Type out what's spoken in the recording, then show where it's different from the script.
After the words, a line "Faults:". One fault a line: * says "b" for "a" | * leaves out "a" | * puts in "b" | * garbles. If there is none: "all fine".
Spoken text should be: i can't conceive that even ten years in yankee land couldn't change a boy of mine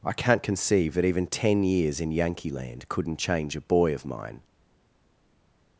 i can't conceive that even ten years in yankee land couldn't change a boy of mine
Faults:
all fine